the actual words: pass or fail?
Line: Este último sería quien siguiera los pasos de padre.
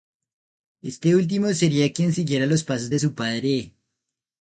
fail